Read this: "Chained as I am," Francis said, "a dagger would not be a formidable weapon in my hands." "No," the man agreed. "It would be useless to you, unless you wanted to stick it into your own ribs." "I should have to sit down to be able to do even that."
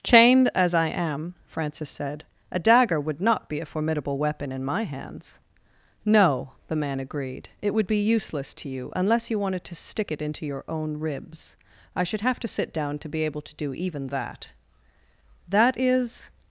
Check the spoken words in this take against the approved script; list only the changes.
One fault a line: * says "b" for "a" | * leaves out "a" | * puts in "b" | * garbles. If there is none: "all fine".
* puts in "That is"